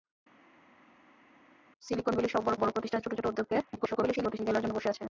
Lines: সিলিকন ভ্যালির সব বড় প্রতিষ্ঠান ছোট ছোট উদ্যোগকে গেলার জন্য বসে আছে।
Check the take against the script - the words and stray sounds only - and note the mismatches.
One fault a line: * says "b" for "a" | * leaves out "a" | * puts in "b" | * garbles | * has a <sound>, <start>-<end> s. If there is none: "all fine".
* puts in "বড়"
* garbles